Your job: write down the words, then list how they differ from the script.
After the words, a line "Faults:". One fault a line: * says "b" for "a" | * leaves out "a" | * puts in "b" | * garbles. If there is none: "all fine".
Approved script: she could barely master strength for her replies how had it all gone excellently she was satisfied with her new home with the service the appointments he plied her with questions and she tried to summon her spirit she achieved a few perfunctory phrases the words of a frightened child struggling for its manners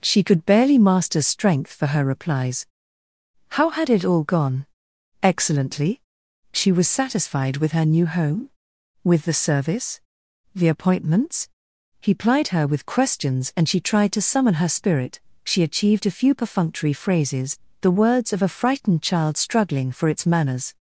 she could barely master strength for her replies how had it all gone excellently she was satisfied with her new home with the service the appointments he plied her with questions and she tried to summon her spirit she achieved a few perfunctory phrases the words of a frightened child struggling for its manners
Faults:
all fine